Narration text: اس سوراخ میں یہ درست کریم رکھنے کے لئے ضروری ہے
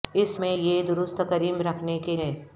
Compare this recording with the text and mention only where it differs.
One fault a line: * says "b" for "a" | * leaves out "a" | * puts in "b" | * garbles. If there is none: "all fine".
* leaves out "سوراخ"
* leaves out "لئے ضروری"